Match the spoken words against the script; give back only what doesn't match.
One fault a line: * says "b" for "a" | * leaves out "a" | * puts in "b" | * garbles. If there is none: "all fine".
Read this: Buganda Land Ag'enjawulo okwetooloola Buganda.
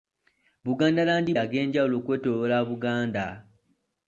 all fine